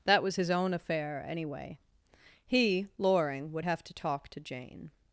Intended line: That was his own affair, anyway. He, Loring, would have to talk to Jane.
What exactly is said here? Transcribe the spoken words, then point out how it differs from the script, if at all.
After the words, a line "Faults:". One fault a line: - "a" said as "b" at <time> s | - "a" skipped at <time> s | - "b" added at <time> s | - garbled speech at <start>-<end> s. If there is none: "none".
That was his own affair, anyway. He, Loring, would have to talk to Jane.
Faults:
none